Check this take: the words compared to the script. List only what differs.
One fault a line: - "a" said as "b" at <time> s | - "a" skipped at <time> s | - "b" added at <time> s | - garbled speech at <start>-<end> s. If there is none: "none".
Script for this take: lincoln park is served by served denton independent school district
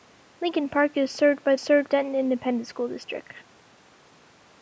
none